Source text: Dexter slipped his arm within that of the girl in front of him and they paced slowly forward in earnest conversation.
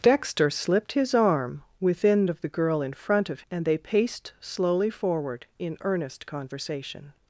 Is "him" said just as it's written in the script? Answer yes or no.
no